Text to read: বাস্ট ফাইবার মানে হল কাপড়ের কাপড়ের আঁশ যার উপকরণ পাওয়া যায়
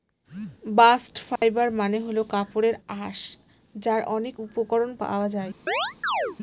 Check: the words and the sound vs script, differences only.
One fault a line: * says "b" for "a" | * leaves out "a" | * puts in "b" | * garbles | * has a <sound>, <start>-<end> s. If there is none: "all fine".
* has a dropout, 1.4-1.4 s
* leaves out "কাপড়ের"
* puts in "অনেক"
* has a chirp, 5.7-6.4 s